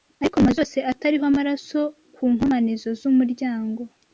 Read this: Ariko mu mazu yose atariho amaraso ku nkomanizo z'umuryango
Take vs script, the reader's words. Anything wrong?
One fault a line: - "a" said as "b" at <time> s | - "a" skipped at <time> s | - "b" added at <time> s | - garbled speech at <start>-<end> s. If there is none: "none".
none